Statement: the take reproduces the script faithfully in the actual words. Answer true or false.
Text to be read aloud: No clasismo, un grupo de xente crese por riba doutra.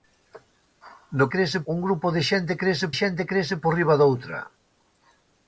false